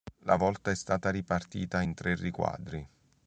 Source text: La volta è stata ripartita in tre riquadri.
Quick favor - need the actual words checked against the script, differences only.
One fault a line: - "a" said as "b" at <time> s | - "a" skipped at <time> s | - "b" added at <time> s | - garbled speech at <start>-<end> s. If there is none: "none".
none